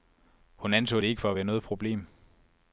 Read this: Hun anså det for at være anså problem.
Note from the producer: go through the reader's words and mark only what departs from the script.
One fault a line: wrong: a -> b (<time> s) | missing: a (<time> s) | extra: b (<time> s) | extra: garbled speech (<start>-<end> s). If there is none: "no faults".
extra: ikke (1.1 s)
wrong: anså -> noget (1.4 s)